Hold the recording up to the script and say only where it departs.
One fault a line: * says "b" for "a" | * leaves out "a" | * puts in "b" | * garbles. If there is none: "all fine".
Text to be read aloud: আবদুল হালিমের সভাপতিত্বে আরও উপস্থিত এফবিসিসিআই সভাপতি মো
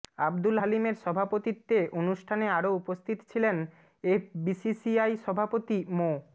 * puts in "অনুষ্ঠানে"
* puts in "ছিলেন"